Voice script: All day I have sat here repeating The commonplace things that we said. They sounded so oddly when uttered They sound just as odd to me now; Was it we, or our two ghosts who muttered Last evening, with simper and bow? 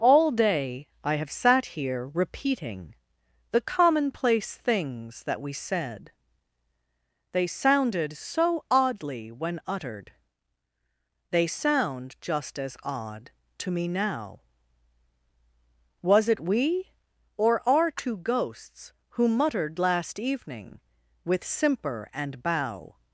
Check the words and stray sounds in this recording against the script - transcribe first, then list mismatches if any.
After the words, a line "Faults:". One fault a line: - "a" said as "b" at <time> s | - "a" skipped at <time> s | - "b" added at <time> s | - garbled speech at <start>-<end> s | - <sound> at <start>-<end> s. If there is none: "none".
All day I have sat here repeating The commonplace things that we said. They sounded so oddly when uttered They sound just as odd to me now; Was it we, or our two ghosts who muttered Last evening, with simper and bow?
Faults:
none